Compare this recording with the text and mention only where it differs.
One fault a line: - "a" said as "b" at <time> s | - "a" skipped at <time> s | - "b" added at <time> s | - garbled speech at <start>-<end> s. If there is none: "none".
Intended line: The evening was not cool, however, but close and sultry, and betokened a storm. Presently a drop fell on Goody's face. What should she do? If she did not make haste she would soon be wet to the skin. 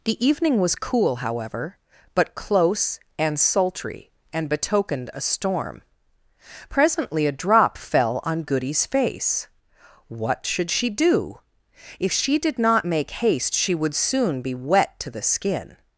- "not" skipped at 0.8 s